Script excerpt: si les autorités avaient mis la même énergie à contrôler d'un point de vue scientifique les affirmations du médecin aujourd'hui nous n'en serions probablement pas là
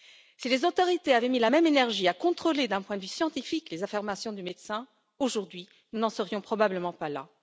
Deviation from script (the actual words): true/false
false